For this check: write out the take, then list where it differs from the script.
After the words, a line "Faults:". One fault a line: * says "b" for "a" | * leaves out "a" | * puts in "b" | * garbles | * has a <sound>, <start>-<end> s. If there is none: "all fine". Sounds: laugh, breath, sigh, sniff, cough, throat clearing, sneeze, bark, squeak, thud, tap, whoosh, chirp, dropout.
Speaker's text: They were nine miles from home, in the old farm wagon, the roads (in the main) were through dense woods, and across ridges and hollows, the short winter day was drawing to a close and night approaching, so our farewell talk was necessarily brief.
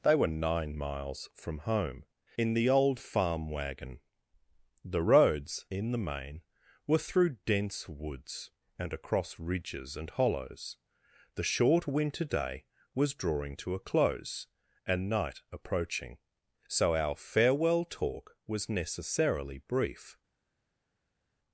They were nine miles from home, in the old farm wagon, the roads (in the main) were through dense woods, and across ridges and hollows, the short winter day was drawing to a close and night approaching, so our farewell talk was necessarily brief.
Faults:
all fine